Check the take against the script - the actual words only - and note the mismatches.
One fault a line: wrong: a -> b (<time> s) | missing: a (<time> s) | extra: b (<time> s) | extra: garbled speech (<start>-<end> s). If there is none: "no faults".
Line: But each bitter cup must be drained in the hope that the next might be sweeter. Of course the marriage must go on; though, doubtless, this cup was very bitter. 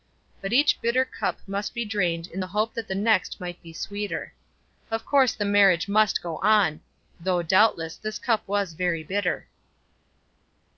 no faults